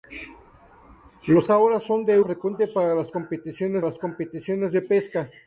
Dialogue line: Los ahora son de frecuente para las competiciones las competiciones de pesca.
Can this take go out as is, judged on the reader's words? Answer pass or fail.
pass